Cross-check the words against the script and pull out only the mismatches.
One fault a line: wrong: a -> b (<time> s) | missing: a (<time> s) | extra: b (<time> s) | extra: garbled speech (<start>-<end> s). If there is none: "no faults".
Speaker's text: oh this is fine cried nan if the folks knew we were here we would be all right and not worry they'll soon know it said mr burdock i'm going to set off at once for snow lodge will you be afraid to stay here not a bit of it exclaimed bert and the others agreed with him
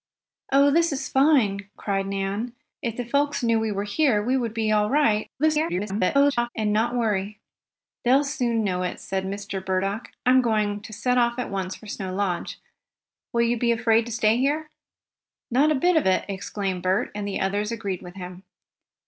extra: garbled speech (5.4-6.5 s)